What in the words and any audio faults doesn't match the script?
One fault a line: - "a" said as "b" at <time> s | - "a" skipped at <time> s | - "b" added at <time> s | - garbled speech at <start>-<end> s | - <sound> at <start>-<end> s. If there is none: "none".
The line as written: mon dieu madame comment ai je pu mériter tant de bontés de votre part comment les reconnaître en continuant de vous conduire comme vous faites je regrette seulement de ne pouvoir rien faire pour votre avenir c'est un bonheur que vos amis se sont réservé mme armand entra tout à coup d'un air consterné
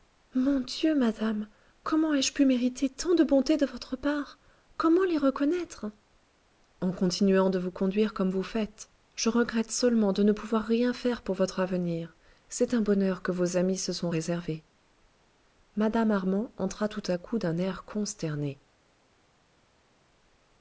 none